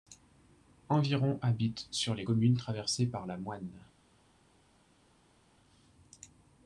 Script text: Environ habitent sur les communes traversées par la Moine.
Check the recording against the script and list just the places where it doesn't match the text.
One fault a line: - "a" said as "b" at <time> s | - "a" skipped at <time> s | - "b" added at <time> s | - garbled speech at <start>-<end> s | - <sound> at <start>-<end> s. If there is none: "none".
none